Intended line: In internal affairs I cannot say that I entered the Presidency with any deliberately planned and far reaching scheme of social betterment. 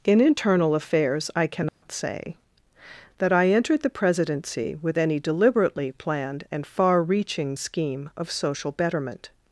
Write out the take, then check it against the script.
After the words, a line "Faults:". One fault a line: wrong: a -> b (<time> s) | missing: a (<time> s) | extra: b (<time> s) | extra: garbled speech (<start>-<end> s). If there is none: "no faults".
In internal affairs I cannot say that I entered the Presidency with any deliberately planned and far reaching scheme of social betterment.
Faults:
no faults